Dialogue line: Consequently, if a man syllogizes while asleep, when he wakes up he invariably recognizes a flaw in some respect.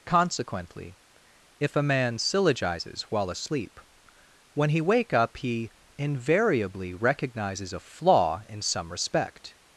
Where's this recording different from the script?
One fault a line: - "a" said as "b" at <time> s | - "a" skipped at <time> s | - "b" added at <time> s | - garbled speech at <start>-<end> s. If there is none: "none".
- "wakes" said as "wake" at 4.8 s